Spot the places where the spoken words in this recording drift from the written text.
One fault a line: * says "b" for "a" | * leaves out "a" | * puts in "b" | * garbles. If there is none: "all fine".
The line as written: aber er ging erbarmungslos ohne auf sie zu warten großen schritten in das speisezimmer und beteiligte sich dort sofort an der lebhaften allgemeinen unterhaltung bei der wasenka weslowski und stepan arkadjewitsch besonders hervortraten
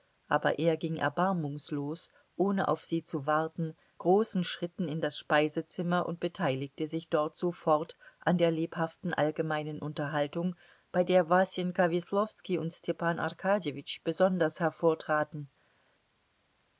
all fine